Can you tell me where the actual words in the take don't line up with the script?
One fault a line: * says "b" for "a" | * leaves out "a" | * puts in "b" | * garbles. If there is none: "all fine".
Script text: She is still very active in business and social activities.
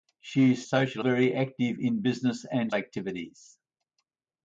* says "social" for "still"
* leaves out "social"